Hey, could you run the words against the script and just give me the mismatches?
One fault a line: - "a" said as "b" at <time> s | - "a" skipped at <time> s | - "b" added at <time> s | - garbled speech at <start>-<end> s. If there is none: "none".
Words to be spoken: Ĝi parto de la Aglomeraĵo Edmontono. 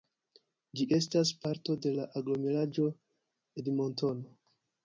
- "estas" added at 1.0 s